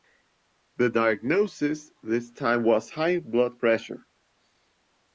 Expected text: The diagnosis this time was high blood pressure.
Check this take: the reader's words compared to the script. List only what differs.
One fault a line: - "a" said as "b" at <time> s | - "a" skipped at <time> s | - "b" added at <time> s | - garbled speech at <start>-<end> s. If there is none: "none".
none